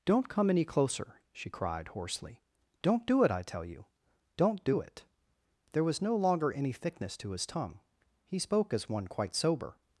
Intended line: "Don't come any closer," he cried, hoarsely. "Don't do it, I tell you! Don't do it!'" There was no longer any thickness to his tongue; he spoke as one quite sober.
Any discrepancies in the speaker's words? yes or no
yes